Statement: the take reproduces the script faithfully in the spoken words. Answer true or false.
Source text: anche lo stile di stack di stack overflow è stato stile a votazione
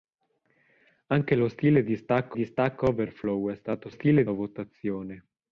true